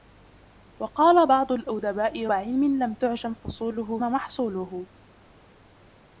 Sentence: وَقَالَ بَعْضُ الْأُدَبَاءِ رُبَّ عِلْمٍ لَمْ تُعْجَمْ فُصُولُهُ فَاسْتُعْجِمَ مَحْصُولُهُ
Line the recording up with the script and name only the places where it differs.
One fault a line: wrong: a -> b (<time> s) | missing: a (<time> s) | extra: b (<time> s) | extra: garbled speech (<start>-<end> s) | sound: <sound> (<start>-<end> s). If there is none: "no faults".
missing: رُبَّ (2.3 s)
missing: فَاسْتُعْجِمَ (4.0 s)